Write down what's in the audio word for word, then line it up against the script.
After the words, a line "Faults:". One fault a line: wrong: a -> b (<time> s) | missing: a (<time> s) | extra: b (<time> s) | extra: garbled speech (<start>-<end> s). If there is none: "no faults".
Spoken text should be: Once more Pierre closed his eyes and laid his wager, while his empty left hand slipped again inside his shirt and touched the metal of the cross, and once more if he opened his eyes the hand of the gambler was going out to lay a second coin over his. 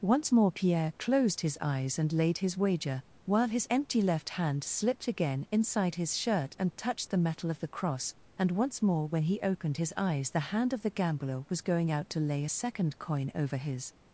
Once more Pierre closed his eyes and laid his wager, while his empty left hand slipped again inside his shirt and touched the metal of the cross, and once more when he opened his eyes the hand of the gambler was going out to lay a second coin over his.
Faults:
wrong: if -> when (9.1 s)